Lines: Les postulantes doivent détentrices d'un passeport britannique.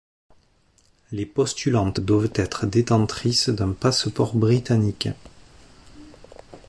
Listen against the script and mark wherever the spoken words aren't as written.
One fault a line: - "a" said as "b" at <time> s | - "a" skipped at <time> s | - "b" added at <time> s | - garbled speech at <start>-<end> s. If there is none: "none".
- "être" added at 2.3 s